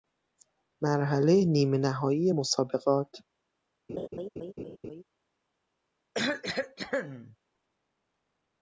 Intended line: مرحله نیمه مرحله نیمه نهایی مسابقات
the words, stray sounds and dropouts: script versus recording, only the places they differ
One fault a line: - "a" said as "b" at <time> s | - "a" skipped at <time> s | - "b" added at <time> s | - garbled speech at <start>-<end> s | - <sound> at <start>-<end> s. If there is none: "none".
- "مرحله نیمه" skipped at 1.8 s
- laugh at 3.9-5.0 s
- cough at 6.1-7.4 s